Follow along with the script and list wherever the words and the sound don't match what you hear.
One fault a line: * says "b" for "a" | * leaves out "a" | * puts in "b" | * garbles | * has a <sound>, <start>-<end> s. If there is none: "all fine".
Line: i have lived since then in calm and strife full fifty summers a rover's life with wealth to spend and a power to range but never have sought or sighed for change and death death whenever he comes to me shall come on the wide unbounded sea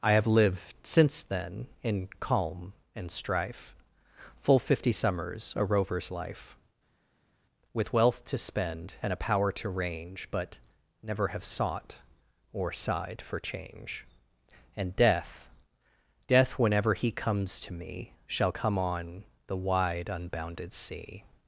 all fine